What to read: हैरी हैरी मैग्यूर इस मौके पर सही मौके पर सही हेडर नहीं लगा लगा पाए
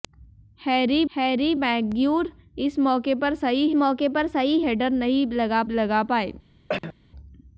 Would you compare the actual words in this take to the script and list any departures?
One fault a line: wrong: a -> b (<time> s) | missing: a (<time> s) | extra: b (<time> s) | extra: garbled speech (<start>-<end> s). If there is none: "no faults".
no faults